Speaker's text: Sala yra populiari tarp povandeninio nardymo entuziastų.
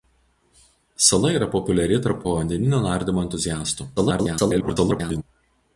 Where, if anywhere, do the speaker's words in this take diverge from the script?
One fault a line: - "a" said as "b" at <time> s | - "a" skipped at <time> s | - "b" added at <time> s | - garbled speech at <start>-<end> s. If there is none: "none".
- garbled speech at 4.0-5.2 s